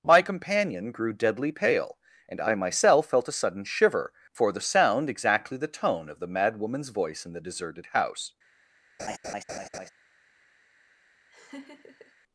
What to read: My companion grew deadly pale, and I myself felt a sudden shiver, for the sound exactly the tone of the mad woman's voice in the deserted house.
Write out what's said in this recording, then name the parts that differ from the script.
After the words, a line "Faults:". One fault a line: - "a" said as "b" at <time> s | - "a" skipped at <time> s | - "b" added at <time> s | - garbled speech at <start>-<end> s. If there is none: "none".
My companion grew deadly pale, and I myself felt a sudden shiver, for the sound exactly the tone of the mad woman's voice in the deserted house.
Faults:
none